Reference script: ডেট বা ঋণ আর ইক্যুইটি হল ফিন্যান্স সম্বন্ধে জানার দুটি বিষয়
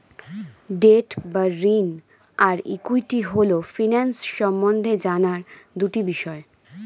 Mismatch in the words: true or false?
false